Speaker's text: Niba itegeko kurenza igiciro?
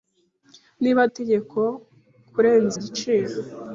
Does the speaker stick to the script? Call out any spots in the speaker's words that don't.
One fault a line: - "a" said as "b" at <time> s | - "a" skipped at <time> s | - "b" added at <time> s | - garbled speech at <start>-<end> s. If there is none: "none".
none